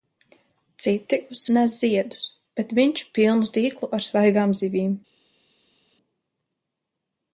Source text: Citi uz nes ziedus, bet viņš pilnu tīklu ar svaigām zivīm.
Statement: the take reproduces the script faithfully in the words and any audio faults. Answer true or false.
true